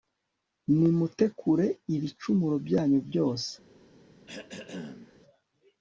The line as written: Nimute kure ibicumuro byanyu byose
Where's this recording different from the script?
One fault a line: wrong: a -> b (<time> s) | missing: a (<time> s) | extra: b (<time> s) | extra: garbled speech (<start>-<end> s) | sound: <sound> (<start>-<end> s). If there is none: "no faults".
sound: throat clearing (4.3-5.2 s)